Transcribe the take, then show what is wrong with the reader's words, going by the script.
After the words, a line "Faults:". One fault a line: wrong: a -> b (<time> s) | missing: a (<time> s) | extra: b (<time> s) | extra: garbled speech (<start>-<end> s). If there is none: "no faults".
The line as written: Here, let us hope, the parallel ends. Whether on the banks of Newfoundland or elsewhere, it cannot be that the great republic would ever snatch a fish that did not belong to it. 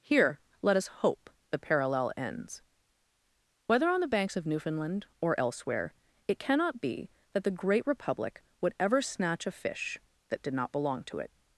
Here, let us hope, the parallel ends. Whether on the banks of Newfoundland or elsewhere, it cannot be that the great republic would ever snatch a fish that did not belong to it.
Faults:
no faults